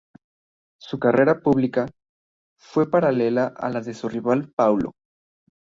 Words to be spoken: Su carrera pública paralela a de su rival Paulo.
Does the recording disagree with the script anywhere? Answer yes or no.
yes